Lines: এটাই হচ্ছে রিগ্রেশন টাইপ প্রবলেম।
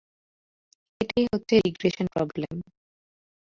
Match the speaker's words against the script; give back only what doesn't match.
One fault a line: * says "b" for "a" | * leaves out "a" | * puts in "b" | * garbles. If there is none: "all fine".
* leaves out "টাইপ"